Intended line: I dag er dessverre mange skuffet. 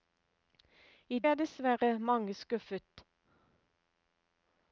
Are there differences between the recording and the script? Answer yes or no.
yes